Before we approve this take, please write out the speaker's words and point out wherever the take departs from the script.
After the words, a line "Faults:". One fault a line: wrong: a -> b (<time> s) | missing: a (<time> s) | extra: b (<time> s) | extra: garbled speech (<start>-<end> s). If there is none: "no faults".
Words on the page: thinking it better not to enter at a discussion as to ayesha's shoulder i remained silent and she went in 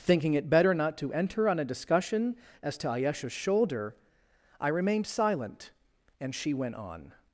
thinking it better not to enter on a discussion as to ayesha's shoulder i remained silent and she went on
Faults:
wrong: at -> on (1.5 s)
wrong: in -> on (6.8 s)